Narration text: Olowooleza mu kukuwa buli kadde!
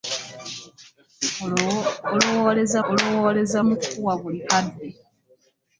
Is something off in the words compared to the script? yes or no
yes